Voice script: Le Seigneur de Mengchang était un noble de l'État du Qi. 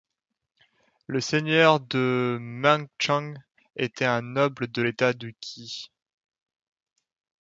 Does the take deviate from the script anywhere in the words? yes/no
no